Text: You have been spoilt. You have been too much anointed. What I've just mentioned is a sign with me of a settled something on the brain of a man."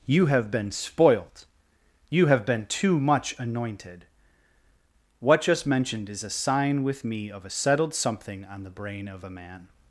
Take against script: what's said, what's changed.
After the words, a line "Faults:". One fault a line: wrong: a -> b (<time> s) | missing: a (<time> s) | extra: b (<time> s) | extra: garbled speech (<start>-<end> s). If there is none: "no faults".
You have been spoilt. You have been too much anointed. What just mentioned is a sign with me of a settled something on the brain of a man."
Faults:
missing: I've (5.4 s)